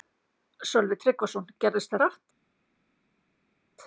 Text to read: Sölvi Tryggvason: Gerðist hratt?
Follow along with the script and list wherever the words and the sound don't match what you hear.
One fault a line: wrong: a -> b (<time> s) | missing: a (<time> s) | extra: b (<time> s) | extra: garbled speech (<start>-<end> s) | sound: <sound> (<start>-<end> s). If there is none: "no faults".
no faults